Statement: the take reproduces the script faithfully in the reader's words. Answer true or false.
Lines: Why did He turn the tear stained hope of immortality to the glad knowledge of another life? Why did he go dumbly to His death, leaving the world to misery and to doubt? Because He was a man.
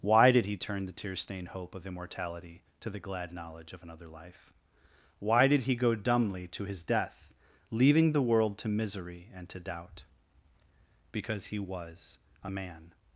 true